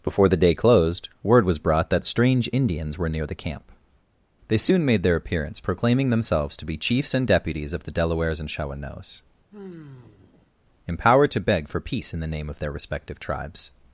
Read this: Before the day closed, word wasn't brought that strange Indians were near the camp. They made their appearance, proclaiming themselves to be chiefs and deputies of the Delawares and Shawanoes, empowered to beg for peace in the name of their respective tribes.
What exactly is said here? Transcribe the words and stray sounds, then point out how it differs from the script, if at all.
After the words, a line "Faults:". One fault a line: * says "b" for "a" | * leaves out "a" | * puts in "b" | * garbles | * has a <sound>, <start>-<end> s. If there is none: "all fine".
Before the day closed, word was brought that strange Indians were near the camp. They soon made their appearance, proclaiming themselves to be chiefs and deputies of the Delawares and Shawanoes, empowered to beg for peace in the name of their respective tribes.
Faults:
* says "was" for "wasn't"
* puts in "soon"
* has a sigh, 9.5-10.5 s